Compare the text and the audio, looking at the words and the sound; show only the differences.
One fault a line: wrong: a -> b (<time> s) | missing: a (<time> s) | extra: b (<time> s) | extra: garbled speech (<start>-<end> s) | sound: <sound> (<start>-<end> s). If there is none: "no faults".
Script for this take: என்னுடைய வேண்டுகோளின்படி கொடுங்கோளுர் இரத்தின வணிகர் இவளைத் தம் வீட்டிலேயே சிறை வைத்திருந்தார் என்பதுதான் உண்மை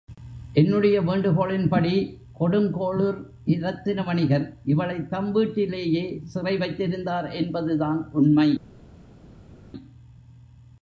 no faults